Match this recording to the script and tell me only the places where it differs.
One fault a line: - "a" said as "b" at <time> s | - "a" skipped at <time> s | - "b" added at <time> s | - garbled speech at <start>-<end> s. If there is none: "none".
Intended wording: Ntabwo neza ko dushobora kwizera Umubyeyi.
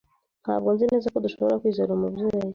- "nzi" added at 0.7 s